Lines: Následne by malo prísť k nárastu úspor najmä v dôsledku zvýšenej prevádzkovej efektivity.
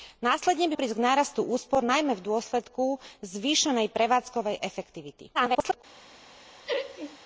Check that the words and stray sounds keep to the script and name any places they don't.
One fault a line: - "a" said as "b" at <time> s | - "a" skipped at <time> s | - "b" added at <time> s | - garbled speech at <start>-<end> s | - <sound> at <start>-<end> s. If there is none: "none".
- "malo" skipped at 0.8 s
- garbled speech at 5.3-5.8 s
- laugh at 6.7-7.2 s